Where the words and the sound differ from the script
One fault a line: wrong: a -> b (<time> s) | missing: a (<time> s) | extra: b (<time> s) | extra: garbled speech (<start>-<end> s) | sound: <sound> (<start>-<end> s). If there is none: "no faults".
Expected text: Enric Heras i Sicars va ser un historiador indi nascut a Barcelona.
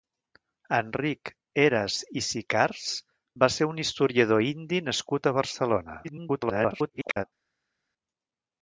extra: garbled speech (6.0-7.3 s)